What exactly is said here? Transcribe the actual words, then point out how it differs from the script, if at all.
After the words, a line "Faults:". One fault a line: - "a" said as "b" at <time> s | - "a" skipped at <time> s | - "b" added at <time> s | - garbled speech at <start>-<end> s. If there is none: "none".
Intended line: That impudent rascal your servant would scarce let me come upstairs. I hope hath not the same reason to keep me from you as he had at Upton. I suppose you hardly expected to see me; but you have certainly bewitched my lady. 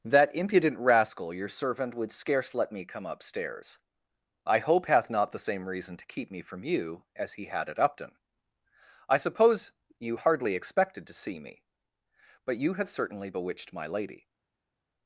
That impudent rascal your servant would scarce let me come upstairs. I hope hath not the same reason to keep me from you as he had at Upton. I suppose you hardly expected to see me; but you have certainly bewitched my lady.
Faults:
none